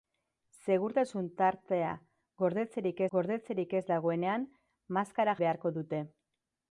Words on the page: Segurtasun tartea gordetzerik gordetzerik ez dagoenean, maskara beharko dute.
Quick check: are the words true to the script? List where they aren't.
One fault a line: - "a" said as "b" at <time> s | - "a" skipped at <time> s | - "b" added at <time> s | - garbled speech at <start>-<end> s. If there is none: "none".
none